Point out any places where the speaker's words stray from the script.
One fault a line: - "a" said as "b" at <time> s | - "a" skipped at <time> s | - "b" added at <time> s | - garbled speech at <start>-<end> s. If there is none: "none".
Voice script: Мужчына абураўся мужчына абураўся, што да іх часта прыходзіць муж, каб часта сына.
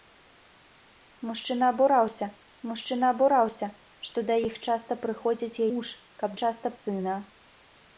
none